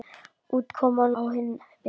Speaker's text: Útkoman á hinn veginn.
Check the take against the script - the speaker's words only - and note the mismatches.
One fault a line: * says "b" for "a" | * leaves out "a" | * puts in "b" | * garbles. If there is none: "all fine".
all fine